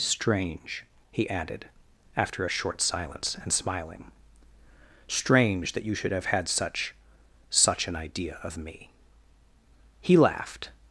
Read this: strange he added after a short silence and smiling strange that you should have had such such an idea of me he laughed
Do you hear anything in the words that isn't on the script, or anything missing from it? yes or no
no